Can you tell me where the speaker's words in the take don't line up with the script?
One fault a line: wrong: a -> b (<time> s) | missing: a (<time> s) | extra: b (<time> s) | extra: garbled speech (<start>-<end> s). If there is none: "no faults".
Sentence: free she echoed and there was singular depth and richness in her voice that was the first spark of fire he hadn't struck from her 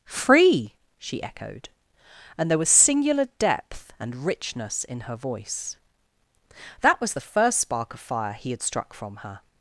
wrong: hadn't -> had (8.5 s)